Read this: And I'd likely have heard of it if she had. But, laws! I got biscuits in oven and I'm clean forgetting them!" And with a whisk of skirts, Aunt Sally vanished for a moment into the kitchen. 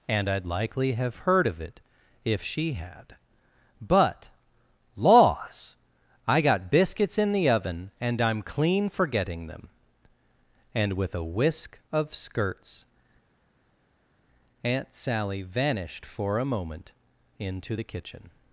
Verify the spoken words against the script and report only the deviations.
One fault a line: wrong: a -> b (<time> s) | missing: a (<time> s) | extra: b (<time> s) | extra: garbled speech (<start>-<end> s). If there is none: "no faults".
extra: the (7.3 s)